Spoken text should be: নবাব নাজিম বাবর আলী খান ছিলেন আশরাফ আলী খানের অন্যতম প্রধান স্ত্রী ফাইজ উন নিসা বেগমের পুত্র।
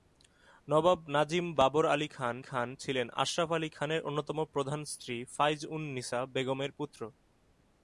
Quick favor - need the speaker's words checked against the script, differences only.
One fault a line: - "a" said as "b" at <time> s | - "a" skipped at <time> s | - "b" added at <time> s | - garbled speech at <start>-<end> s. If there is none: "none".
- "খান" added at 2.4 s